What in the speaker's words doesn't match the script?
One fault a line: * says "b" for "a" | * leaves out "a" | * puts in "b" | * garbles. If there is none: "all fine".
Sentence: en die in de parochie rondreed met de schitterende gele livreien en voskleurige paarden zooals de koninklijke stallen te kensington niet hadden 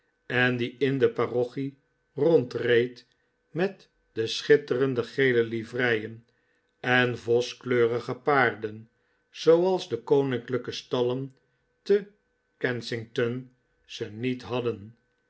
* puts in "ze"